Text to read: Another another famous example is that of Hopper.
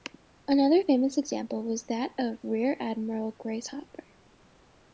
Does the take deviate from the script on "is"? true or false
true